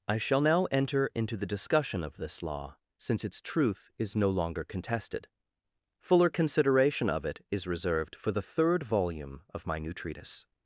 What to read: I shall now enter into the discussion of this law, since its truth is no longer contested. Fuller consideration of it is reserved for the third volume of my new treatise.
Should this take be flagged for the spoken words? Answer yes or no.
no